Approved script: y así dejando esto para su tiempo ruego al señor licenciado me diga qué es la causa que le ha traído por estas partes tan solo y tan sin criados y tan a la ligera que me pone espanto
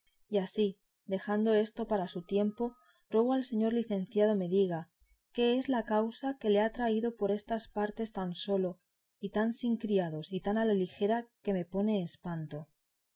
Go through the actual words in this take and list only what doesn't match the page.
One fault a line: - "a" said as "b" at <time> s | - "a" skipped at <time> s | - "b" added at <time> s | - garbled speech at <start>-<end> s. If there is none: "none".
none